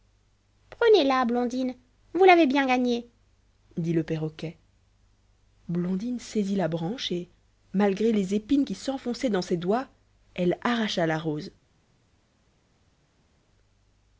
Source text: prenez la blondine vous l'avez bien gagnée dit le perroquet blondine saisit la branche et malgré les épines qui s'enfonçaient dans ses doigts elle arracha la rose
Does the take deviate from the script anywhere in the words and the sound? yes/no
no